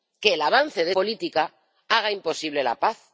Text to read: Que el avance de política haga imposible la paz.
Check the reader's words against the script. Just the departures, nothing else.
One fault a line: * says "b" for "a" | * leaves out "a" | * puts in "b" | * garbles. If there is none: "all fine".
all fine